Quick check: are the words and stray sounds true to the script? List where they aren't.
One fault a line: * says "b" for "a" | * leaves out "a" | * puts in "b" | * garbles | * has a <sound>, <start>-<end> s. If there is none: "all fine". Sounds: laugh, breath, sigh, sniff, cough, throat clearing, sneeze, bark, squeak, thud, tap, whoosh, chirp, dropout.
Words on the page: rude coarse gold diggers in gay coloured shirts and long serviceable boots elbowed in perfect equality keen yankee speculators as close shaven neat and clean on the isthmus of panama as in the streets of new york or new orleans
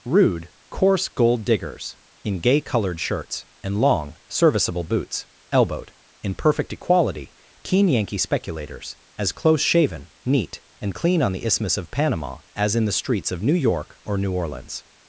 all fine